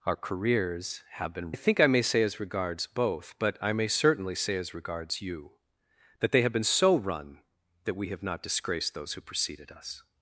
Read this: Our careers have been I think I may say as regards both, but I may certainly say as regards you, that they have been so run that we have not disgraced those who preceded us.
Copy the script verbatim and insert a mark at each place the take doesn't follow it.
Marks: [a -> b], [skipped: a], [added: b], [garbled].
Our careers have been I think I may say as regards both, but I may certainly say as regards you, that they have been so run that we have not disgraced those who preceded us.